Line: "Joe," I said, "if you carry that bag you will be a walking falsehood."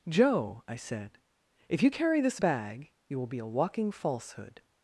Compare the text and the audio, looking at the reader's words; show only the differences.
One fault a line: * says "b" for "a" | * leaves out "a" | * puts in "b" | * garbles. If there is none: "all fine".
* says "this" for "that"